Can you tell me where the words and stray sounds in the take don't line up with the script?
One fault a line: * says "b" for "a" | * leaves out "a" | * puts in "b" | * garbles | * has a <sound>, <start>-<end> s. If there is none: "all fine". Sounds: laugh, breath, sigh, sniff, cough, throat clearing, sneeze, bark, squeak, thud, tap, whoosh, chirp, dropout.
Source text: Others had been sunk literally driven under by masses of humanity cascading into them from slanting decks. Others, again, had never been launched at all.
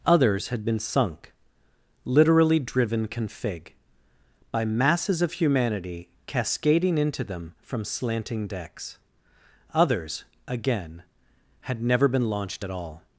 * says "config" for "under"